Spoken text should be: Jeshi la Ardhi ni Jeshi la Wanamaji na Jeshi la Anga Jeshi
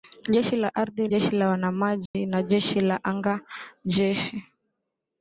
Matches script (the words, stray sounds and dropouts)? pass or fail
fail